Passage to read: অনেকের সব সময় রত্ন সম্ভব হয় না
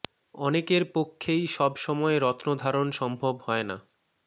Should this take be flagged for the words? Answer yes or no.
yes